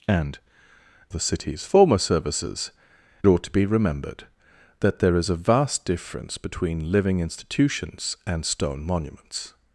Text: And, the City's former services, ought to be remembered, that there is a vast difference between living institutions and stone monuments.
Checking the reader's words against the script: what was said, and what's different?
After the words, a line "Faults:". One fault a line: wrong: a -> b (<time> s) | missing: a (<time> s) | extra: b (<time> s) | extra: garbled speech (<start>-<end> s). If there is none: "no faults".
And, the City's former services, ought to be remembered, that there is a vast difference between living institutions and stone monuments.
Faults:
no faults